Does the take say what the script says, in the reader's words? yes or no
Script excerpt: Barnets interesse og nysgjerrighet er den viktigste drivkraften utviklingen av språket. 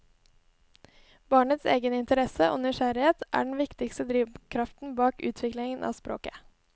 no